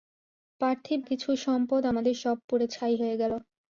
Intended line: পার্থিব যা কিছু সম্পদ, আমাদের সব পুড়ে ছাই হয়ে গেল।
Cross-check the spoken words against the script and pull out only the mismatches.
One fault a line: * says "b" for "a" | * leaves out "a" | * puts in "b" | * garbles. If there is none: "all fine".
* leaves out "যা"